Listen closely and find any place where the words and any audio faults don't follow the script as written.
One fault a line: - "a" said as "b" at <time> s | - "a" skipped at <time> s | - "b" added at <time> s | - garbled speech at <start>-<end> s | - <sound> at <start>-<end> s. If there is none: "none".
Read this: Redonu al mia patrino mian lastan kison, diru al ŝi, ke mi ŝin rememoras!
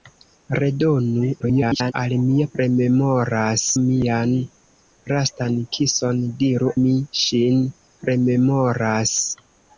- garbled speech at 1.4-1.9 s
- "patrino" said as "rememoras" at 2.6 s
- "al ŝi ke" skipped at 6.7 s